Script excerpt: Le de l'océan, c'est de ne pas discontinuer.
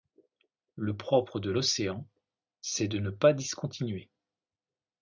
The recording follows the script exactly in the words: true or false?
false